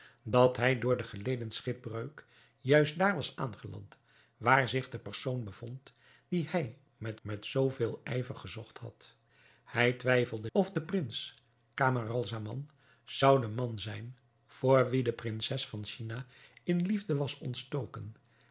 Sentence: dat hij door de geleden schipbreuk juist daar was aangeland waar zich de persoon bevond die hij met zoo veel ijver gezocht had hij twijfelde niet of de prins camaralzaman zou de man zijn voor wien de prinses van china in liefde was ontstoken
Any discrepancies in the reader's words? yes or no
yes